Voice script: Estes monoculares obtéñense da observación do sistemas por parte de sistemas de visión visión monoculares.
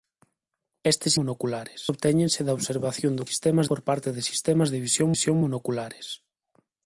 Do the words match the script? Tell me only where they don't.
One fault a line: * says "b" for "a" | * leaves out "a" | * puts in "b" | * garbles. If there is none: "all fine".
all fine